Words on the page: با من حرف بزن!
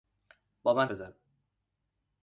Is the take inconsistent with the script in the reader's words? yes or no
yes